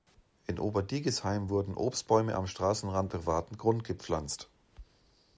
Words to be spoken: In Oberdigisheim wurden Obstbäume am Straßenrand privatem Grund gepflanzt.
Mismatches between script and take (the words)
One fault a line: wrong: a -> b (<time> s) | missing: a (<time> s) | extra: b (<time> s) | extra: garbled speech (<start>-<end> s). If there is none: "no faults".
no faults